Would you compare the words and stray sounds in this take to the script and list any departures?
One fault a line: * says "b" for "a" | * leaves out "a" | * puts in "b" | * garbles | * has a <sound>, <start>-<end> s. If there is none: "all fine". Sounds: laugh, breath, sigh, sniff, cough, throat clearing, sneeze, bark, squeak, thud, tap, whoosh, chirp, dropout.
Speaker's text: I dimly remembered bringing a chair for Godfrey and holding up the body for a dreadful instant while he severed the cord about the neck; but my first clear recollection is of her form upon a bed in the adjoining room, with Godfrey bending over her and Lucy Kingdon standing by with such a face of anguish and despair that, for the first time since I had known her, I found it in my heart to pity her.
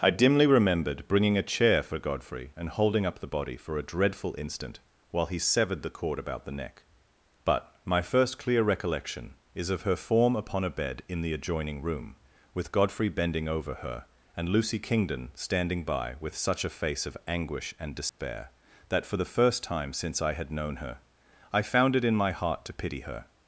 * has a dropout, 18.1-18.2 s